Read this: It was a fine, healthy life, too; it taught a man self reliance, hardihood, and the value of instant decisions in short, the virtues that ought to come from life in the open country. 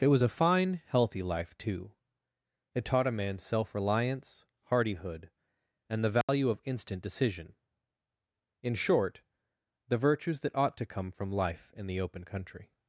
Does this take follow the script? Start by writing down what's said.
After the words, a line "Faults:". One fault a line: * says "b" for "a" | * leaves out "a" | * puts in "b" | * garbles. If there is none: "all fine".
It was a fine, healthy life, too; it taught a man self reliance, hardihood, and the value of instant decision in short, the virtues that ought to come from life in the open country.
Faults:
* says "decision" for "decisions"